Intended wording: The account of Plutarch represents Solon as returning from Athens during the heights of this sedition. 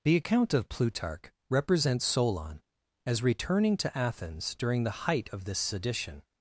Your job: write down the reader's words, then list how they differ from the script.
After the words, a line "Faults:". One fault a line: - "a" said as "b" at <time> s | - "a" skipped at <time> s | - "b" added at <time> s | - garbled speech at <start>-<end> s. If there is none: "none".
The account of Plutarch represents Solon as returning to Athens during the height of this sedition.
Faults:
- "from" said as "to" at 3.8 s
- "heights" said as "height" at 5.1 s